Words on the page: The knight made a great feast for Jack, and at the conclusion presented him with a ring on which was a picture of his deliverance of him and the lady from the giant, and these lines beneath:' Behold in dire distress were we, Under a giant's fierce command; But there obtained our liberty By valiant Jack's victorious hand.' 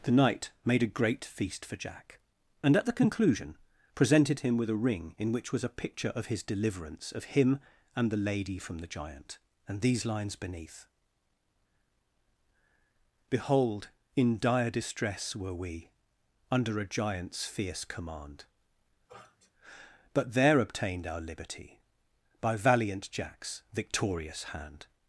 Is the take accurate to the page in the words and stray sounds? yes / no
no